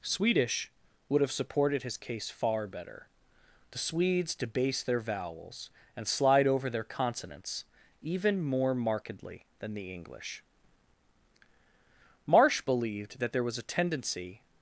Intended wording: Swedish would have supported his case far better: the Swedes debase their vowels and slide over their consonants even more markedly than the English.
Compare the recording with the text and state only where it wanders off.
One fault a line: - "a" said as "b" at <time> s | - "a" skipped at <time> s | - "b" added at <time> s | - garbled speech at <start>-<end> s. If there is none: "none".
- "Marsh believed that there was a tendency" added at 12.3 s